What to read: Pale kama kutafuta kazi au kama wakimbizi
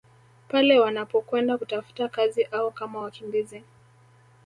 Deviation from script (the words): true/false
true